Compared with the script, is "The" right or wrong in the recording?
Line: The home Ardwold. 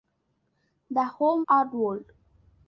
right